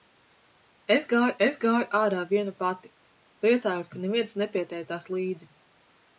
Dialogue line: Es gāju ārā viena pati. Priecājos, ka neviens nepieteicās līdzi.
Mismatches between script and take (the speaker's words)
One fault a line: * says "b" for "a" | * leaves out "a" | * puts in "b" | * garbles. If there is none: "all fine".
* puts in "es gāju"